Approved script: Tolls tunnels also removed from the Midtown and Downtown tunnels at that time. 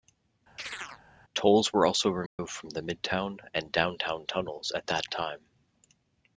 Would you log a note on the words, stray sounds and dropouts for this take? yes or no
yes